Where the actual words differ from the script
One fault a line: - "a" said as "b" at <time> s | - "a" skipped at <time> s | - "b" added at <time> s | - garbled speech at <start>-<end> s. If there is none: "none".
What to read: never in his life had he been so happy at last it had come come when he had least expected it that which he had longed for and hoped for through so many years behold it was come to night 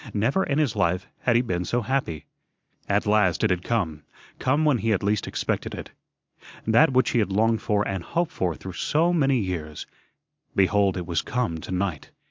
none